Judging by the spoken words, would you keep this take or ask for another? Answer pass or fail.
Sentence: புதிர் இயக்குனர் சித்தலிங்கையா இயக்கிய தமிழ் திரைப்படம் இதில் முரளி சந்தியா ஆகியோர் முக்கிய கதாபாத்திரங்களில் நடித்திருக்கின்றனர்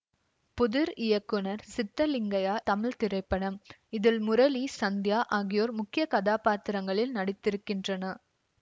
fail